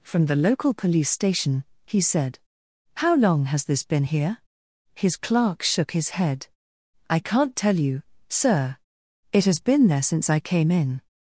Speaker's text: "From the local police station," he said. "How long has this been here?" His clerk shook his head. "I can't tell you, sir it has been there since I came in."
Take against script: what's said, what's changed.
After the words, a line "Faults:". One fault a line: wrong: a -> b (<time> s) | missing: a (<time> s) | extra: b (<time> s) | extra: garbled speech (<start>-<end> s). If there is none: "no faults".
"From the local police station," he said. "How long has this been here?" His clerk shook his head. "I can't tell you, sir it has been there since I came in."
Faults:
no faults